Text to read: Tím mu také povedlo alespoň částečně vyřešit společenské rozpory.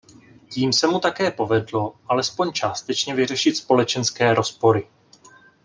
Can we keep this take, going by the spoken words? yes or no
no